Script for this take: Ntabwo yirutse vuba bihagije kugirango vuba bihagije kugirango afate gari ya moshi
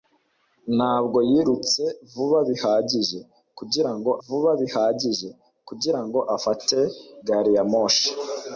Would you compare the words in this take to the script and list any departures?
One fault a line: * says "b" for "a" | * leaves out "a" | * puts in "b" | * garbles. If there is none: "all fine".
all fine